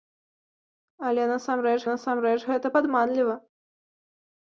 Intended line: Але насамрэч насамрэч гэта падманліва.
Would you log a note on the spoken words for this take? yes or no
no